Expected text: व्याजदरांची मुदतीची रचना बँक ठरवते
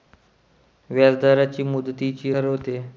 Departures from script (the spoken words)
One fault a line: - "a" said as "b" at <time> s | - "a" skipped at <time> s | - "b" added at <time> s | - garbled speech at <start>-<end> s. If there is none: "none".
- "रचना बँक" skipped at 2.3 s